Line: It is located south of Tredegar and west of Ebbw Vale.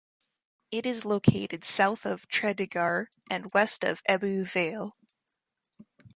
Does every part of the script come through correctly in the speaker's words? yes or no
yes